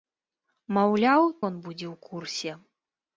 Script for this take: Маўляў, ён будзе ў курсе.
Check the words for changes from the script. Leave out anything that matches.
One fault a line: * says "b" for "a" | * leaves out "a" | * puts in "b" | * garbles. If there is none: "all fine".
all fine